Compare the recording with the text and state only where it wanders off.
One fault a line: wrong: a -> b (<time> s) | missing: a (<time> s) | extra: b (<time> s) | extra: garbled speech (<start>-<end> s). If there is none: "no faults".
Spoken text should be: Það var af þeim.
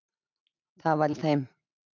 no faults